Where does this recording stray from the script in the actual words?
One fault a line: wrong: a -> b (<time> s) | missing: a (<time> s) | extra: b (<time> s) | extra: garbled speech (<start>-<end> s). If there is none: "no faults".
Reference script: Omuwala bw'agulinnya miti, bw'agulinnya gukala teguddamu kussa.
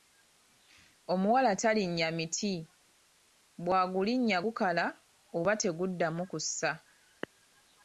wrong: bw'agulinnya -> talinnya (1.6 s)
extra: oba (5.4 s)